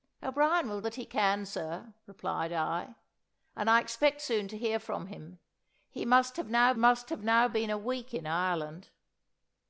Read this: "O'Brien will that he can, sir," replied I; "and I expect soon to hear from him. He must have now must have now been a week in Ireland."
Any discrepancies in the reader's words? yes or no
no